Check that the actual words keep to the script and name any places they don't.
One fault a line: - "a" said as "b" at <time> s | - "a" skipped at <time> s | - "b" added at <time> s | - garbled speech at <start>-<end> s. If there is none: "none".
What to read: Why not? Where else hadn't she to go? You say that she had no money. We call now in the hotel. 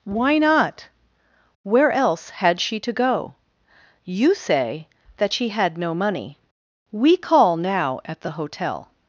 - "hadn't" said as "had" at 2.3 s
- "in" said as "at" at 8.1 s